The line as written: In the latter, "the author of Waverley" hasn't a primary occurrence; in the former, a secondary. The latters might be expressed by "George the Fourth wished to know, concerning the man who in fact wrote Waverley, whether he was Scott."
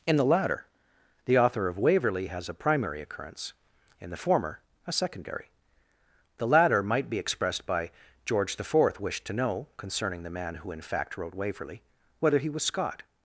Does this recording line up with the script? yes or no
no